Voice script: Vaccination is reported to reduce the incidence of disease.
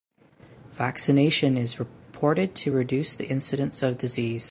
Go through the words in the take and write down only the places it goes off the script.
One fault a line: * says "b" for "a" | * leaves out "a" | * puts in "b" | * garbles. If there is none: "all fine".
all fine